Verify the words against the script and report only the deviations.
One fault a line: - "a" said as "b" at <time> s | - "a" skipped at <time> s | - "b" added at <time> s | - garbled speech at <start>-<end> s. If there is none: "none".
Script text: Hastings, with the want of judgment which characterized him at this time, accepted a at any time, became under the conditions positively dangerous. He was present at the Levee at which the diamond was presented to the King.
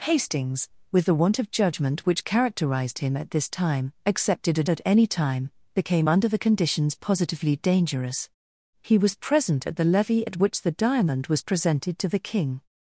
none